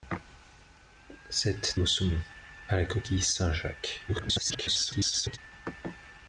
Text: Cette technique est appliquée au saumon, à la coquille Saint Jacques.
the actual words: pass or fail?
fail